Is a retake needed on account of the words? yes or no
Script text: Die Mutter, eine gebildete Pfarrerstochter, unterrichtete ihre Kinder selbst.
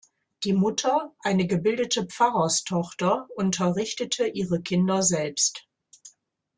no